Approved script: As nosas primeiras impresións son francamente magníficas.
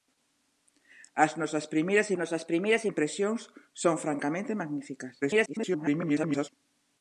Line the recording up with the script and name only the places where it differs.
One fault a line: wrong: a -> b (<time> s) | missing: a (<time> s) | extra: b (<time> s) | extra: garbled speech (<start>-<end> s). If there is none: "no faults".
extra: nosas primeiras (2.2 s)
extra: garbled speech (5.2-6.5 s)